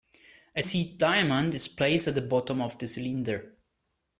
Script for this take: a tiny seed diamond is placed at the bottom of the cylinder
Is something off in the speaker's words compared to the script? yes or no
yes